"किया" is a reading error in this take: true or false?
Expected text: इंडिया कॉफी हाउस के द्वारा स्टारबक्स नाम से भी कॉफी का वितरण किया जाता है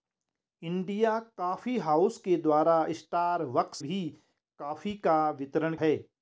true